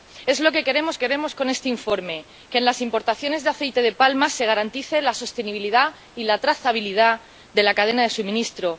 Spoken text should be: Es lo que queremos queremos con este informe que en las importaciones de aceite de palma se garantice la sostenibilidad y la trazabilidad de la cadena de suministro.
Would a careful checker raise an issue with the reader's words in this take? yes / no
no